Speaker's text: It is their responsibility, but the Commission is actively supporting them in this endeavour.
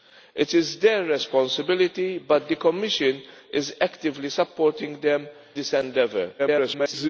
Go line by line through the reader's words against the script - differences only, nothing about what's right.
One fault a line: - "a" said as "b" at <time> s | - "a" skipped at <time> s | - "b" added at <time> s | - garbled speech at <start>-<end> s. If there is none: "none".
- "in" skipped at 5.3 s
- garbled speech at 6.4-7.1 s